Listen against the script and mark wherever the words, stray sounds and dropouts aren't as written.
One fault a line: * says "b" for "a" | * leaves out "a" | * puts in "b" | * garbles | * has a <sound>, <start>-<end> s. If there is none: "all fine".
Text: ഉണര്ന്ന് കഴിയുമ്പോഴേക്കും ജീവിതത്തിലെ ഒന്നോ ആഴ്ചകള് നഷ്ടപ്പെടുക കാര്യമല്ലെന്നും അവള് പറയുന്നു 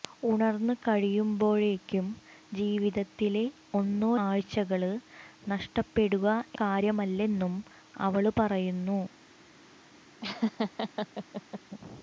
* has a laugh, 10.2-11.6 s